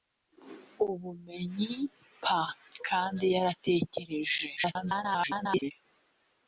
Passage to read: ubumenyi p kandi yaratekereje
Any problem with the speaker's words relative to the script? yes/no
yes